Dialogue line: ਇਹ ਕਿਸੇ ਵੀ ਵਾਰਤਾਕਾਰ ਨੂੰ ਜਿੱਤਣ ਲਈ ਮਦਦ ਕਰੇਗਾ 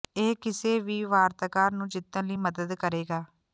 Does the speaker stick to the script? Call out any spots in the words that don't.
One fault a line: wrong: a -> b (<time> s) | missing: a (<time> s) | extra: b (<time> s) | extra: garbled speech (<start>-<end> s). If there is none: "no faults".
no faults